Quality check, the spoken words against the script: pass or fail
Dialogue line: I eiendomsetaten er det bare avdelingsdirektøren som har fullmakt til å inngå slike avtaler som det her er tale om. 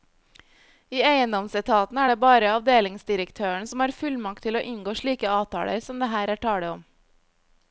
pass